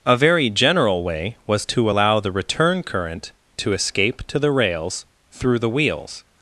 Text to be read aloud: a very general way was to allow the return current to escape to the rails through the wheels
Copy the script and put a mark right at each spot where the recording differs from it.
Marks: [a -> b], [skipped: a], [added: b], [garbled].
a very general way was to allow the return current to escape to the rails through the wheels